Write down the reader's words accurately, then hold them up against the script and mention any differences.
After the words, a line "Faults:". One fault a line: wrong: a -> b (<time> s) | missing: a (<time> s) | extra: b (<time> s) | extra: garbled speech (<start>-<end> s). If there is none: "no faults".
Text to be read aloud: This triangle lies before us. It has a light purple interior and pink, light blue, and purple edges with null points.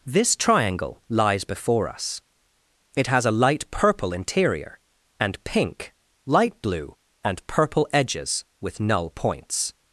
This triangle lies before us. It has a light purple interior and pink, light blue, and purple edges with null points.
Faults:
no faults